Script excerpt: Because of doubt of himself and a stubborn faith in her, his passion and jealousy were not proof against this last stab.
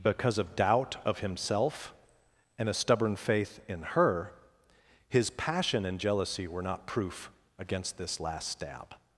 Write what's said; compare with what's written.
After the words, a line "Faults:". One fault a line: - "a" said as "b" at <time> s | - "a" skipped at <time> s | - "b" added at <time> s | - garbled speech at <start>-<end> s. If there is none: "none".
Because of doubt of himself and a stubborn faith in her, his passion and jealousy were not proof against this last stab.
Faults:
none